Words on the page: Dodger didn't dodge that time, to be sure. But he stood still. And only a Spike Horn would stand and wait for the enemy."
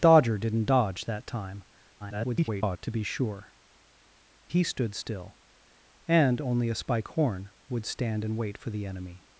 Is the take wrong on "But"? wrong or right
wrong